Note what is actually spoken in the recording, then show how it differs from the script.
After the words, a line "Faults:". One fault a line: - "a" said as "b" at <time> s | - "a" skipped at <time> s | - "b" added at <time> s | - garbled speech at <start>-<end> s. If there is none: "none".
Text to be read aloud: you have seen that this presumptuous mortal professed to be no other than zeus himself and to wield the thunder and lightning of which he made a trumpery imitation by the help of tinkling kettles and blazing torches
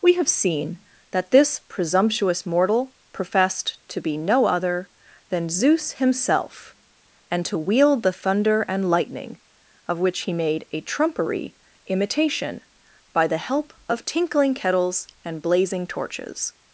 we have seen that this presumptuous mortal professed to be no other than zeus himself and to wield the thunder and lightning of which he made a trumpery imitation by the help of tinkling kettles and blazing torches
Faults:
- "you" said as "we" at 0.0 s